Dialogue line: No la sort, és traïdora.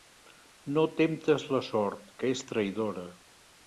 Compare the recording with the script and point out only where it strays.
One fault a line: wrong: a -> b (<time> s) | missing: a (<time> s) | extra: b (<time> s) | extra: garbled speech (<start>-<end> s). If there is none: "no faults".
extra: temptes (1.0 s)
extra: que (2.2 s)